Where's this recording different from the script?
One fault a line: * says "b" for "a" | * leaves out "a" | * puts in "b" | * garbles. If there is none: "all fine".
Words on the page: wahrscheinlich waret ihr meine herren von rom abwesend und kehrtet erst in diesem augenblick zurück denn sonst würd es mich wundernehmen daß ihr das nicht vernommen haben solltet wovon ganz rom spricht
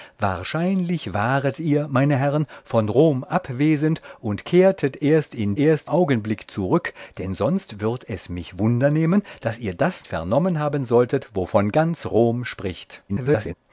* says "erst" for "diesem"
* leaves out "nicht"
* garbles